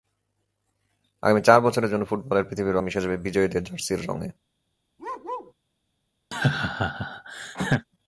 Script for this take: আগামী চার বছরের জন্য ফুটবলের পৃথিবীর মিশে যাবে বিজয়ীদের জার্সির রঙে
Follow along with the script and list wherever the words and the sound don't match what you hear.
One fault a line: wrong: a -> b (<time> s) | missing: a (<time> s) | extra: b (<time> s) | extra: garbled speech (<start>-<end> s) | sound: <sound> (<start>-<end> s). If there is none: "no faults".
sound: bark (5.0-5.5 s)
sound: laugh (6.3-7.9 s)